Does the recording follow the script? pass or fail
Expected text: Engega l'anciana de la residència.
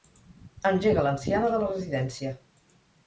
pass